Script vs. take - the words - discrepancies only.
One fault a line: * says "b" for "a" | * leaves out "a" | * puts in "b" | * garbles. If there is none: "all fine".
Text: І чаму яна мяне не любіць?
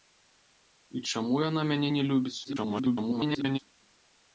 * garbles